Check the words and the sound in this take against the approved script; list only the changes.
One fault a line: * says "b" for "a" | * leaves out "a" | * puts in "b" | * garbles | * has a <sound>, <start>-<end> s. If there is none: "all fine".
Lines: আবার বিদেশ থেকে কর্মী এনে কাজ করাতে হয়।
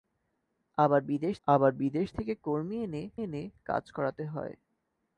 * puts in "আবার বিদেশ"
* puts in "এনে"